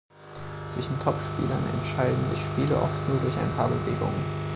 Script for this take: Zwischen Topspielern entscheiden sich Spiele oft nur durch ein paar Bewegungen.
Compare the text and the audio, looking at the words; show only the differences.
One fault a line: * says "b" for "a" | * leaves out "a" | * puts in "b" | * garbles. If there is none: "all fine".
all fine